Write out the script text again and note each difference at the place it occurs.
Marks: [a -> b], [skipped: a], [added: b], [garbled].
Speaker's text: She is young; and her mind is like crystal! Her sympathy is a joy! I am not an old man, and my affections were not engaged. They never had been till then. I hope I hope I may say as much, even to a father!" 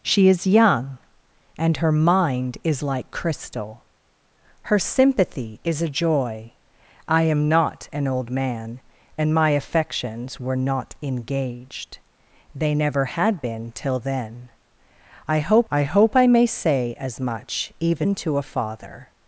She is young; and her mind is like crystal! Her sympathy is a joy! I am not an old man, and my affections were not engaged. They never had been till then. I hope I hope I may say as much, even to a father!"